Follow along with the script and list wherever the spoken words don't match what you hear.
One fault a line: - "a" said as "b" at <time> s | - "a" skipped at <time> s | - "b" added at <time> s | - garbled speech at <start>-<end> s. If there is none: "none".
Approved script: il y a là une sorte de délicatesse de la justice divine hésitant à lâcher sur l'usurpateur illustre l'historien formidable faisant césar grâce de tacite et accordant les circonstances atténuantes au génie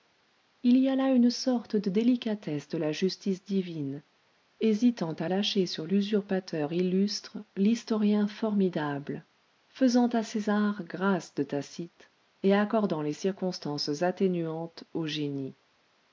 - "à" added at 10.1 s